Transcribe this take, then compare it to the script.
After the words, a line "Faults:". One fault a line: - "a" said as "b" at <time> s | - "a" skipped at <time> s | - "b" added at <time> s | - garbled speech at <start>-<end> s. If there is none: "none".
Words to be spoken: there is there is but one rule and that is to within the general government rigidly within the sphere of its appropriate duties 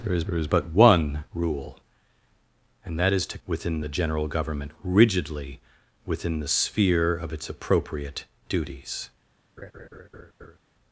there is there is but one rule and that is to within the general government rigidly within the sphere of its appropriate duties
Faults:
none